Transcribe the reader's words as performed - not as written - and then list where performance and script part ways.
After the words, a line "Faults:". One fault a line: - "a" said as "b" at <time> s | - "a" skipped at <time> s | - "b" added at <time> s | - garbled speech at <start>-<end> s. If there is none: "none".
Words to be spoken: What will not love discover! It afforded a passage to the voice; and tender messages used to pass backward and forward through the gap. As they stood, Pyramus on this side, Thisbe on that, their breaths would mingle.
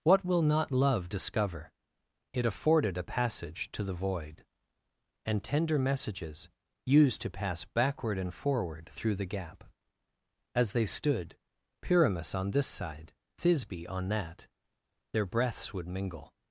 What will not love discover! It afforded a passage to the void; and tender messages used to pass backward and forward through the gap. As they stood, Pyramus on this side, Thisbe on that, their breaths would mingle.
Faults:
- "voice" said as "void" at 3.9 s